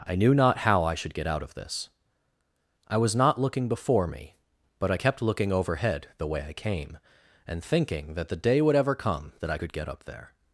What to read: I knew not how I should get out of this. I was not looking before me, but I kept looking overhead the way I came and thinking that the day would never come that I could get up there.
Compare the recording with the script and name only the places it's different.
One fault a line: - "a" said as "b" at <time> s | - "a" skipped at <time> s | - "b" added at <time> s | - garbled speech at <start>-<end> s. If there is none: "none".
- "never" said as "ever" at 8.7 s